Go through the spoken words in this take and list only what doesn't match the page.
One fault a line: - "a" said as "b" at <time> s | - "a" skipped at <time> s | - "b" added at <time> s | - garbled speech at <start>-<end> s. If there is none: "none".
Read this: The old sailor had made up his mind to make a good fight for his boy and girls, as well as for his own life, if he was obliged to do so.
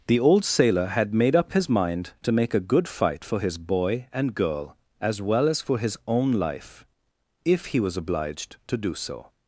- "girls" said as "girl" at 4.3 s